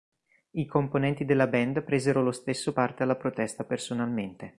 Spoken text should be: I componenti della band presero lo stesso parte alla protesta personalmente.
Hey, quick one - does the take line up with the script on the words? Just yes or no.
yes